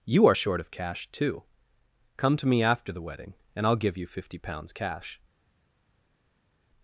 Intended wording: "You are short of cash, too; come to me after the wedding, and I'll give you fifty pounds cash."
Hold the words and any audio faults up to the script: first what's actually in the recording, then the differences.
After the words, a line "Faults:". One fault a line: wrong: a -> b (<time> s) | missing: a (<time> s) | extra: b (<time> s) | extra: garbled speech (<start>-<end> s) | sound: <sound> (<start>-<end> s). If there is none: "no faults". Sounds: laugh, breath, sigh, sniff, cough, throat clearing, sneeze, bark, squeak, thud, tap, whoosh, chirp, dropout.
"You are short of cash, too; come to me after the wedding, and I'll give you fifty pounds cash."
Faults:
no faults